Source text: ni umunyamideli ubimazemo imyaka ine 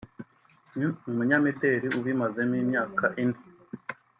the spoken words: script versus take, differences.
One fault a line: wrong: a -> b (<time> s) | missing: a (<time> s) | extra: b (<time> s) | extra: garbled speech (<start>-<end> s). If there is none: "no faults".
no faults